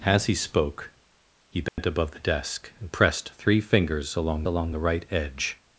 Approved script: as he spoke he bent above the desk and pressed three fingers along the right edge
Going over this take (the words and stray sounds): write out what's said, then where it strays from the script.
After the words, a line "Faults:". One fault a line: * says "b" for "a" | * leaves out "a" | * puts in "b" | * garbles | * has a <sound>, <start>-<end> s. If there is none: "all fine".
as he spoke he bent above the desk and pressed three fingers along along the right edge
Faults:
* has a dropout, 1.7-1.8 s
* puts in "along"